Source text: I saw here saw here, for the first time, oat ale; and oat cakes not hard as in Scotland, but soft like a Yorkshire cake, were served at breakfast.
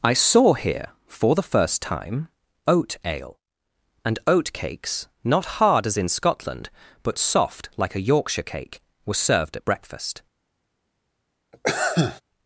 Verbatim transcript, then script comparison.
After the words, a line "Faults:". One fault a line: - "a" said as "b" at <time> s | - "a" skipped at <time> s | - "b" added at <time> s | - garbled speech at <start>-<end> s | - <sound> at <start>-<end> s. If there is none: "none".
I saw here, for the first time, oat ale; and oat cakes not hard as in Scotland, but soft like a Yorkshire cake, were served at breakfast.
Faults:
- "saw here" skipped at 0.9 s
- sneeze at 11.5-12.2 s